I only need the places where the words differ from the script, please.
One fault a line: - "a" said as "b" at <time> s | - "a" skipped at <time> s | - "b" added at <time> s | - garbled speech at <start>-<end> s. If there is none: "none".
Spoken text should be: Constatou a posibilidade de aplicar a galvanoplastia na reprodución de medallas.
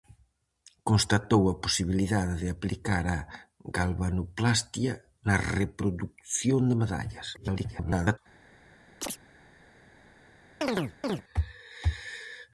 - garbled speech at 7.3-8.2 s